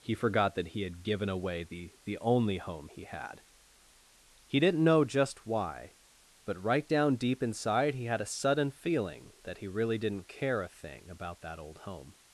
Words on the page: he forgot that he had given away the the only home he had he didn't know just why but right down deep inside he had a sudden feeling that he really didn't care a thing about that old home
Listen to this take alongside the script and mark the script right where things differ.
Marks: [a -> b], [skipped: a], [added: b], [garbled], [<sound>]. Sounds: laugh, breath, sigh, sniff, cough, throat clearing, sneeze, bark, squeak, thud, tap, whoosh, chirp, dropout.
he forgot that he had given away the the only home he had he didn't know just why but right down deep inside he had a sudden feeling that he really didn't care a thing about that old home